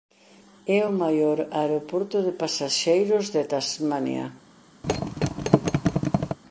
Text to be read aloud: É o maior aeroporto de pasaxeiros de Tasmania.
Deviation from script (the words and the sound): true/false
true